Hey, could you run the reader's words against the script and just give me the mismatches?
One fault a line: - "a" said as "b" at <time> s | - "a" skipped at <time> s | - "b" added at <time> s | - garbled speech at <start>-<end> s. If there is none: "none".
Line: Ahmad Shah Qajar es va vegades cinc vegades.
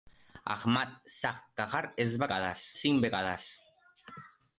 none